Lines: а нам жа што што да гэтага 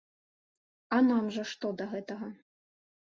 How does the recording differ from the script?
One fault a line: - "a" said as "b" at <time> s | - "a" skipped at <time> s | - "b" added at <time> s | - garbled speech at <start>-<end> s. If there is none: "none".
- "што" skipped at 1.7 s